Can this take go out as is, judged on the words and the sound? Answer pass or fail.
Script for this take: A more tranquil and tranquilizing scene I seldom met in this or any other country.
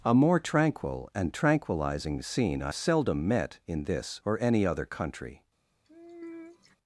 fail